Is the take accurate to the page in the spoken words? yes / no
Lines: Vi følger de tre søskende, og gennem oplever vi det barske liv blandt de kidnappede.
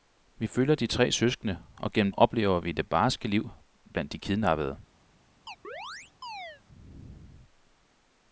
yes